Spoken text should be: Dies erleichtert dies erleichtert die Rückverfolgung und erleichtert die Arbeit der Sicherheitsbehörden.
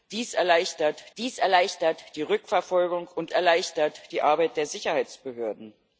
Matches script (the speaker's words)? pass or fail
pass